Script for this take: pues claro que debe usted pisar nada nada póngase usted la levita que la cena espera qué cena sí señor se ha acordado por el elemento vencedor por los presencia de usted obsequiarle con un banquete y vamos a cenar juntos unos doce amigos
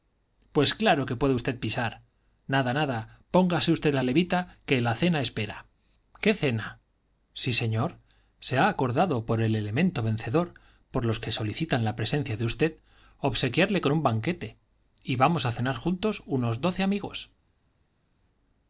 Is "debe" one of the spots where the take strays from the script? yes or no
yes